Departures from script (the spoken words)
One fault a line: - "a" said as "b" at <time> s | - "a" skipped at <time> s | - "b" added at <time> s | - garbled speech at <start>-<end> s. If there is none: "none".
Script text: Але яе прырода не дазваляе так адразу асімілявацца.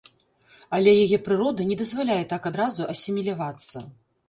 none